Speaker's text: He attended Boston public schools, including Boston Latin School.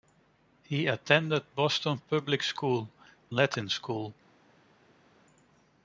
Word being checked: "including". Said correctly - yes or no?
no